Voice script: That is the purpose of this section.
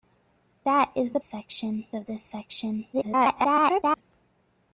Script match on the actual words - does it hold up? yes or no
no